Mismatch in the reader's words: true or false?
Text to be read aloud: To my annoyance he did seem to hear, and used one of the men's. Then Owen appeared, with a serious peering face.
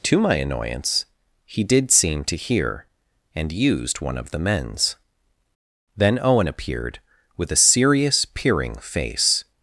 false